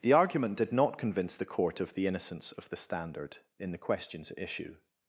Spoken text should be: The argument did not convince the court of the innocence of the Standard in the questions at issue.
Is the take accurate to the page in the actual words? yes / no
yes